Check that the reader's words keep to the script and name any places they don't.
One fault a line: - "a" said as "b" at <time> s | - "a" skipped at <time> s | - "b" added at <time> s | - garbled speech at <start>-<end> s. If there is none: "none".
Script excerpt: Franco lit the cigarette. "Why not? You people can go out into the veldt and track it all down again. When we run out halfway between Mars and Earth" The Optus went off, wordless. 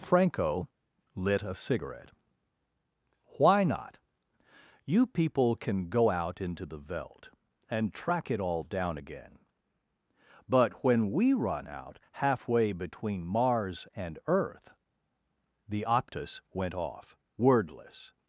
- "the" said as "a" at 1.4 s
- "But" added at 10.5 s